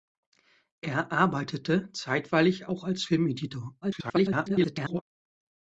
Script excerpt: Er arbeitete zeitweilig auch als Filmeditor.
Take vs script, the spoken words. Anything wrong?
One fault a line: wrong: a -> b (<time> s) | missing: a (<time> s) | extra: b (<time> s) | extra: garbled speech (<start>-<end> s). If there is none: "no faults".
extra: garbled speech (3.8-5.0 s)